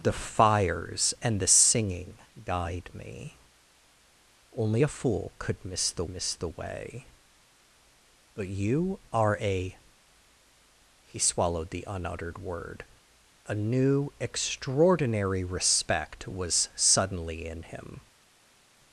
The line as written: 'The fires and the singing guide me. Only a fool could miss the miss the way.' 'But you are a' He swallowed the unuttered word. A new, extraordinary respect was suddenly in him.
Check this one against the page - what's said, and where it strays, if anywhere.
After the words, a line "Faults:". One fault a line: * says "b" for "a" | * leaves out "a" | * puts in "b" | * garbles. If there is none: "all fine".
'The fires and the singing guide me. Only a fool could miss the miss the way.' 'But you are a' He swallowed the unuttered word. A new, extraordinary respect was suddenly in him.
Faults:
all fine